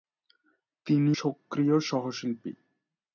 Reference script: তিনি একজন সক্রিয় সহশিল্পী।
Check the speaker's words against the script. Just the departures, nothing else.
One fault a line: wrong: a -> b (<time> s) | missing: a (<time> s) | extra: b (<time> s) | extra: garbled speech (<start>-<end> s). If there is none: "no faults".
missing: একজন (1.1 s)